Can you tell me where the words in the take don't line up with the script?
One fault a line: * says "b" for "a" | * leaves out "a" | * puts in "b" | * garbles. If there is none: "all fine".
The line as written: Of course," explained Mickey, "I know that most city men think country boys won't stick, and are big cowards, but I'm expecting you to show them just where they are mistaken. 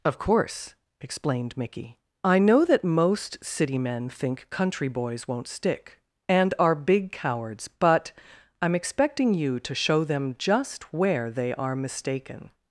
all fine